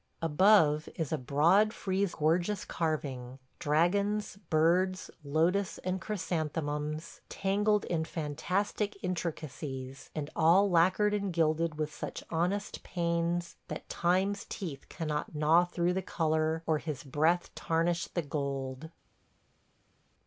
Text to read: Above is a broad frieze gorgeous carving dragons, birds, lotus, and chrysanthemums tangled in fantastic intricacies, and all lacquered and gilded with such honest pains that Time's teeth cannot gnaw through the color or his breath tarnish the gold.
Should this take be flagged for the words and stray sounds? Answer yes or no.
no